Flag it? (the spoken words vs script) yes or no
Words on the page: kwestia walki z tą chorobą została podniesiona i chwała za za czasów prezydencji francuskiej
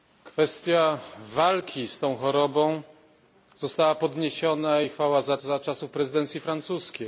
no